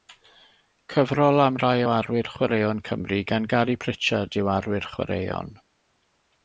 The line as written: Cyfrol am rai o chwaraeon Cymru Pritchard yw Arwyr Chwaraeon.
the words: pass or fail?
fail